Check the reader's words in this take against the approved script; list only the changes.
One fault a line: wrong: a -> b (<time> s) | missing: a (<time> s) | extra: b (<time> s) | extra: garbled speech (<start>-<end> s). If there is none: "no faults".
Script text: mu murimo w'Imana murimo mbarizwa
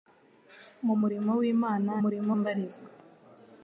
no faults